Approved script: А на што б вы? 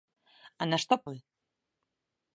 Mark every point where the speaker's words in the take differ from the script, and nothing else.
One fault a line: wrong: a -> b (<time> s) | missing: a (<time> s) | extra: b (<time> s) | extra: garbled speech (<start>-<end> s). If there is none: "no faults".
no faults